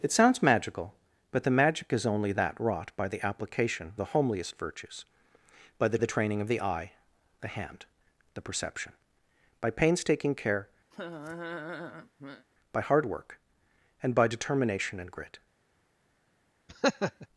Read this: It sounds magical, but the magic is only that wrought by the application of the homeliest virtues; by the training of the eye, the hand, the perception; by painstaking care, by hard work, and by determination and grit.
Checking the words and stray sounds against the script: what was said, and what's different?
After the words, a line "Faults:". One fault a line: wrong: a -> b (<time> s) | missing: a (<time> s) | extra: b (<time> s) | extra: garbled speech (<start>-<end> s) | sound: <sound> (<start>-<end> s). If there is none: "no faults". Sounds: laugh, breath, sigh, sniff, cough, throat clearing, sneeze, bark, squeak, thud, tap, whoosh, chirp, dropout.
It sounds magical, but the magic is only that wrought by the application the homeliest virtues; by the the training of the eye, the hand, the perception; by painstaking care, by hard work, and by determination and grit.
Faults:
missing: of (3.9 s)
extra: the (6.0 s)
sound: laugh (10.9-12.5 s)
sound: laugh (16.7-17.3 s)